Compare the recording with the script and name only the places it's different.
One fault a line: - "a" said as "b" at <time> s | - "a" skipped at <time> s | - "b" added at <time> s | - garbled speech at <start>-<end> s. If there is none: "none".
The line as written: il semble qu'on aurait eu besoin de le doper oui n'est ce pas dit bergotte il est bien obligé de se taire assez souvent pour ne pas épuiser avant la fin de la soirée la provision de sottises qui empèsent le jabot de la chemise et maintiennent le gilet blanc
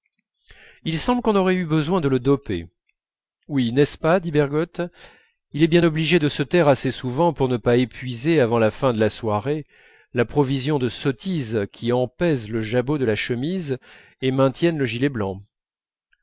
none